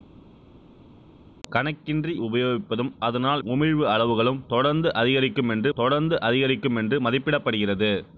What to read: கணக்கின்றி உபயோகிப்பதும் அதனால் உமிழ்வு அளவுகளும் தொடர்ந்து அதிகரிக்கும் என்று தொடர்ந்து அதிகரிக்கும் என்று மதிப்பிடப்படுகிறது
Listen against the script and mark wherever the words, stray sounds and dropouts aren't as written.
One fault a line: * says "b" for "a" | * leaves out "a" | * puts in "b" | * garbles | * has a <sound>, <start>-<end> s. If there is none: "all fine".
all fine